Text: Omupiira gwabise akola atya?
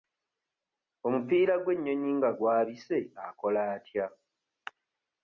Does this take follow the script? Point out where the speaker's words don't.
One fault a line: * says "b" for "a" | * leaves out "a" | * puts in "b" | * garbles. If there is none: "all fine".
* puts in "gw'ennyonyi nga"